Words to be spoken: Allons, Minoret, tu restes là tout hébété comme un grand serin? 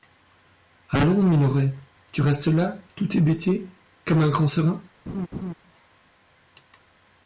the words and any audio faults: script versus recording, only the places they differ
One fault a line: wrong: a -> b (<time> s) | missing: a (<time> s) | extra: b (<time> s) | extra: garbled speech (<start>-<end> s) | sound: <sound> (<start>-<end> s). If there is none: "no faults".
sound: laugh (5.1-5.5 s)